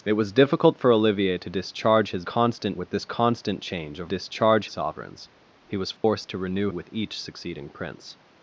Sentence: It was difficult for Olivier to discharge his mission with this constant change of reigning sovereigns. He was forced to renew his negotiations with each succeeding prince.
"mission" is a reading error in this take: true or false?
true